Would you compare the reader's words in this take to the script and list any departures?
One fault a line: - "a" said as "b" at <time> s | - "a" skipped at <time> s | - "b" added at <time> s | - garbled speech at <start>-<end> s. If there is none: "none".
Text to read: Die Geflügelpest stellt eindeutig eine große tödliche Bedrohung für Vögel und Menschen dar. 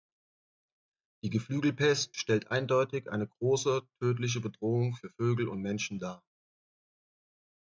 none